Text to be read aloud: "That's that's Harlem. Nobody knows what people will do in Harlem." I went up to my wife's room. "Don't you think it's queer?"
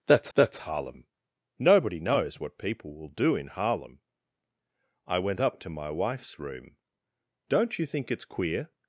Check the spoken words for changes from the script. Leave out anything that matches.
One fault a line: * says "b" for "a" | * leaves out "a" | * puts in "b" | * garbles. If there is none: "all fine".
all fine